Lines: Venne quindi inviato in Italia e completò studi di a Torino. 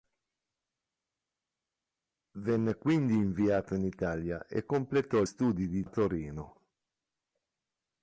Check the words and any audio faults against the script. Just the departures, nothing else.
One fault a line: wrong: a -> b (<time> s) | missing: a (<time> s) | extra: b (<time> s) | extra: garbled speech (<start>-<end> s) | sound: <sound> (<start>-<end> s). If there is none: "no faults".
no faults